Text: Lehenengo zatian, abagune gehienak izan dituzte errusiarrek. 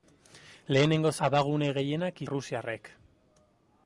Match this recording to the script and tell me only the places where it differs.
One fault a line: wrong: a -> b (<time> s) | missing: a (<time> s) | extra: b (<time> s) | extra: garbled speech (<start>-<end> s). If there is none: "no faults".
missing: zatian (1.1 s)
missing: izan dituzte (2.2 s)